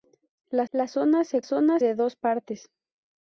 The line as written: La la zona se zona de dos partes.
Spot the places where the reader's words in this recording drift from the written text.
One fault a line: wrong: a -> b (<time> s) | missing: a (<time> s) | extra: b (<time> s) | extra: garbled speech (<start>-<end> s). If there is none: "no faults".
no faults